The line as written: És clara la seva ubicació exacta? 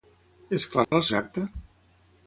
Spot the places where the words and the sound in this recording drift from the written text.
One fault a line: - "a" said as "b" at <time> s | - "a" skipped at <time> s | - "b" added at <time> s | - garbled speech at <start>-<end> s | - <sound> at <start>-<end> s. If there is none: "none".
- dropout at 0.8-0.9 s
- "seva ubicació" skipped at 1.0 s